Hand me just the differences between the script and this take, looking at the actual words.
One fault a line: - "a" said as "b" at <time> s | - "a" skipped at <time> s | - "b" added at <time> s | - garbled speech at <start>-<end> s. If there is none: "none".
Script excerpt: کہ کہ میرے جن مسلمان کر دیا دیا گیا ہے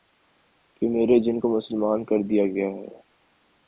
- "کہ" skipped at 0.9 s
- "کو" added at 1.4 s
- "دیا" skipped at 2.5 s